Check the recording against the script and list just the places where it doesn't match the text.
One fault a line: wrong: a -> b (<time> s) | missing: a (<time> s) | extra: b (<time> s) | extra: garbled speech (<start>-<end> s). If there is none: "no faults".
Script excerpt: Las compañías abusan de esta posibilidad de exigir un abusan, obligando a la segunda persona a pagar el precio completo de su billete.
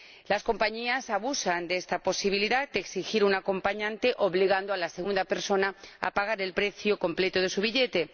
wrong: abusan -> acompañante (3.3 s)